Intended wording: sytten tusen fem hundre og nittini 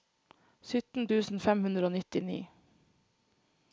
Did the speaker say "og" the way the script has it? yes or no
yes